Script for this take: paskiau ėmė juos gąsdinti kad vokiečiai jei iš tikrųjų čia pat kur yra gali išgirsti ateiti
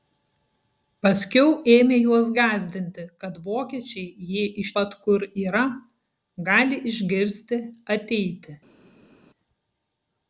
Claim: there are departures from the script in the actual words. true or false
true